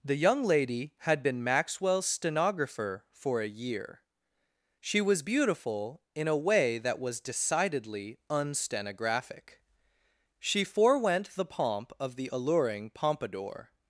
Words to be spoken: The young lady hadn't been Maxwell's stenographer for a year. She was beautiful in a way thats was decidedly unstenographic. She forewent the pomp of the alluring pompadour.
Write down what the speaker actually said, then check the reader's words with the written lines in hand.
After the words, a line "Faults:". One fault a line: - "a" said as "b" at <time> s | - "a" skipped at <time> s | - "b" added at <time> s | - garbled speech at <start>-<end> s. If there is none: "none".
The young lady had been Maxwell's stenographer for a year. She was beautiful in a way that was decidedly unstenographic. She forewent the pomp of the alluring pompadour.
Faults:
- "hadn't" said as "had" at 1.0 s
- "thats" said as "that" at 6.8 s